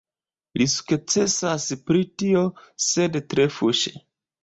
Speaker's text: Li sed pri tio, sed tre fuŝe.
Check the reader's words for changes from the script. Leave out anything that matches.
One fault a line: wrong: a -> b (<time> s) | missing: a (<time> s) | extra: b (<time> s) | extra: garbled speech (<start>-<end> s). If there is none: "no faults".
wrong: sed -> sukcesas (0.8 s)